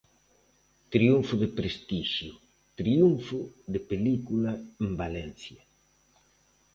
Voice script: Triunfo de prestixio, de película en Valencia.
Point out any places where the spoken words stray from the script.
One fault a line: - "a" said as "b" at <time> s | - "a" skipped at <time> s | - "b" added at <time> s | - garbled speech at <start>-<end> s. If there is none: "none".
- "triunfo" added at 2.8 s